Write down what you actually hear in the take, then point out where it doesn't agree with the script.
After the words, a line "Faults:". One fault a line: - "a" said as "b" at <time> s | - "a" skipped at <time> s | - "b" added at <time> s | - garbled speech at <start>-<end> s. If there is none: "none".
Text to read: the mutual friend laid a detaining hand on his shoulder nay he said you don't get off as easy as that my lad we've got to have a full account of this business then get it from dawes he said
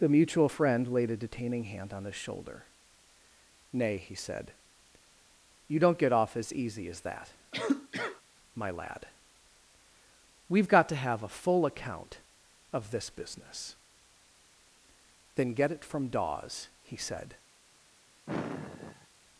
the mutual friend laid a detaining hand on his shoulder nay he said you don't get off as easy as that my lad we've got to have a full account of this business then get it from dawes he said
Faults:
none